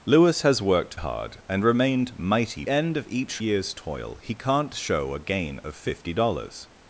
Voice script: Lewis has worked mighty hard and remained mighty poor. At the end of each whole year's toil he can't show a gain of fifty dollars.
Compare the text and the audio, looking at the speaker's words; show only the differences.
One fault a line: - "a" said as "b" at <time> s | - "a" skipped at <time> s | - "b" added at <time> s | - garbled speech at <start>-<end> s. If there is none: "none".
- "mighty" skipped at 1.0 s
- "poor At the" skipped at 2.6 s
- "whole" skipped at 3.4 s